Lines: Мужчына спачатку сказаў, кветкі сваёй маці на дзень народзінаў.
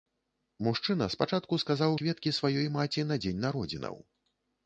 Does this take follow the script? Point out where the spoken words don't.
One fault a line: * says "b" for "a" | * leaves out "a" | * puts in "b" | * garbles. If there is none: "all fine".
all fine